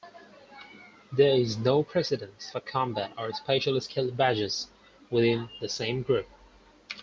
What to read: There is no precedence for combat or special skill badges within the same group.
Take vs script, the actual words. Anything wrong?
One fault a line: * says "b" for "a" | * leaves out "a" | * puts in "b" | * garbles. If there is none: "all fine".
all fine